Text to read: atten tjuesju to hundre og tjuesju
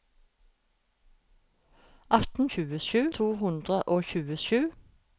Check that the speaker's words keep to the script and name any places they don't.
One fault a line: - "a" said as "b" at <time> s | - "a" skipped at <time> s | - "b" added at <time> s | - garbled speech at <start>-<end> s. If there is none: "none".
none